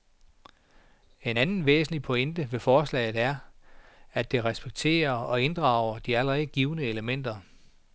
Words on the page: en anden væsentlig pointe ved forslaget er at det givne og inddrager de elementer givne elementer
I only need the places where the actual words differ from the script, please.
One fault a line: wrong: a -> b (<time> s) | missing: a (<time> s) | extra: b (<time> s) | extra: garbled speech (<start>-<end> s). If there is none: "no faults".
wrong: givne -> respekterer (4.4 s)
wrong: elementer -> allerede (6.2 s)